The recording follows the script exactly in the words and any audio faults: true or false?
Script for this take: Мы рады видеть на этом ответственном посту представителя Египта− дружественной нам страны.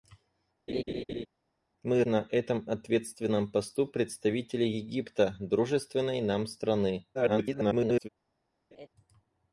false